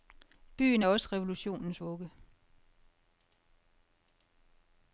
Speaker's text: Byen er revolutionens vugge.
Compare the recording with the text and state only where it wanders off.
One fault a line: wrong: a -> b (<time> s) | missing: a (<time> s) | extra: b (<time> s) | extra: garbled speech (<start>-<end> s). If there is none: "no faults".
extra: også (0.9 s)